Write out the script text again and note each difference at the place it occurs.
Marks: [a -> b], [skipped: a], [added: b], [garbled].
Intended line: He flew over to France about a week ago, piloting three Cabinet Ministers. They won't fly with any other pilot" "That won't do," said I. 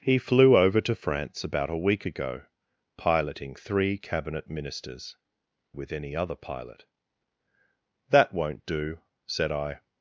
He flew over to France about a week ago, piloting three Cabinet Ministers. [skipped: They won't fly] with any other pilot" "That won't do," said I.